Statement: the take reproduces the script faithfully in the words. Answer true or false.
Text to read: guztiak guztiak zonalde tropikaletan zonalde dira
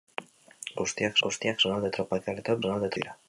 true